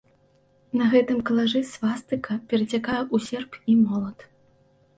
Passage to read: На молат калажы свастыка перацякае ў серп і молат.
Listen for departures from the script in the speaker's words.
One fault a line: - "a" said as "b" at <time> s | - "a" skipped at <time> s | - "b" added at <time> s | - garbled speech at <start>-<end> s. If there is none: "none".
- "молат" said as "гэтым" at 0.9 s